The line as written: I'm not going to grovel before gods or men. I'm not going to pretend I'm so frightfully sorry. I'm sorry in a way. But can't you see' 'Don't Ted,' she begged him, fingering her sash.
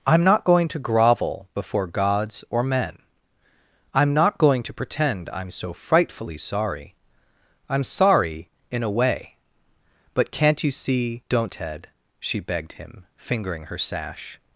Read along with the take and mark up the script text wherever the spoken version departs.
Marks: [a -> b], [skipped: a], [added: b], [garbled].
I'm not going to grovel before gods or men. I'm not going to pretend I'm so frightfully sorry. I'm sorry in a way. But can't you see' 'Don't Ted,' she begged him, fingering her sash.